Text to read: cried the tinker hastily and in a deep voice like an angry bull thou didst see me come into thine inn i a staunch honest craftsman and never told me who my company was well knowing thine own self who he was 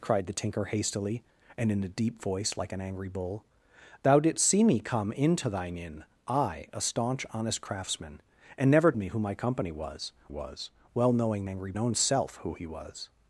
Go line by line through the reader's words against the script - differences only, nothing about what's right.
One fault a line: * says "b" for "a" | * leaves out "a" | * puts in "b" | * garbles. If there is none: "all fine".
* leaves out "told"
* puts in "was"
* says "angry" for "thine"